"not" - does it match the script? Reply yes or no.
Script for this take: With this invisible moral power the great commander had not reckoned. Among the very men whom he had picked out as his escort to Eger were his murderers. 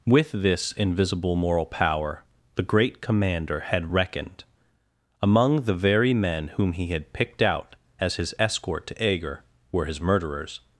no